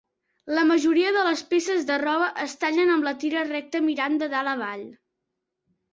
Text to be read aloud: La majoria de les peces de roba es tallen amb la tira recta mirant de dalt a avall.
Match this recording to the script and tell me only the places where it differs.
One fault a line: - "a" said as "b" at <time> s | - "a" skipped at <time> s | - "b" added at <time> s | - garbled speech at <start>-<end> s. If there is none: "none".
none